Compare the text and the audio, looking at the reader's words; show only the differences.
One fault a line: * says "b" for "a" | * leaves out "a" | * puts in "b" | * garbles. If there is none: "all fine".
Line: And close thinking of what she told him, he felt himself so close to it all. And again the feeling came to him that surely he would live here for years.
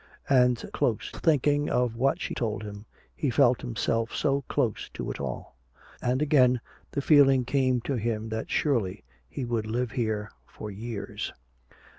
all fine